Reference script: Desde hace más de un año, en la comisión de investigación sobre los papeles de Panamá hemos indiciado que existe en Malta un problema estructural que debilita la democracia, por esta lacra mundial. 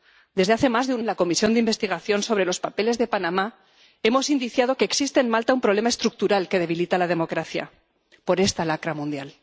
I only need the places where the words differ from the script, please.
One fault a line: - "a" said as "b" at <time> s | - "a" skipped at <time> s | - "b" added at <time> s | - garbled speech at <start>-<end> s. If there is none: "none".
- "año" skipped at 1.0 s